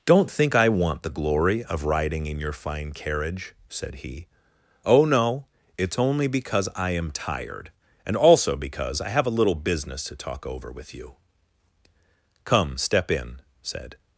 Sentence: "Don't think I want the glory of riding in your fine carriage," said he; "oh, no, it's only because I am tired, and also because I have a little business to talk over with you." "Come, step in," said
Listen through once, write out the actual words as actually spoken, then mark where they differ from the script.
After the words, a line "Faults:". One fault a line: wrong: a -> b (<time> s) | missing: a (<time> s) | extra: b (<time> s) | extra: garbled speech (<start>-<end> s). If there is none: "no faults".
"Don't think I want the glory of riding in your fine carriage," said he; "oh, no, it's only because I am tired, and also because I have a little business to talk over with you." "Come, step in," said
Faults:
no faults